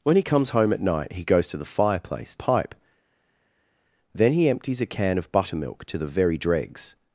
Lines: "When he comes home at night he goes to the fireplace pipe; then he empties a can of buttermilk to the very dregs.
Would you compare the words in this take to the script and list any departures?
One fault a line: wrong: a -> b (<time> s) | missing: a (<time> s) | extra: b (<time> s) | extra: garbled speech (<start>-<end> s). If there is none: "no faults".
no faults